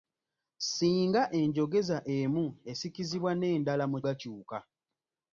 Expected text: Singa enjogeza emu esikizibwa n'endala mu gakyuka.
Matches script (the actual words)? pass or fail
pass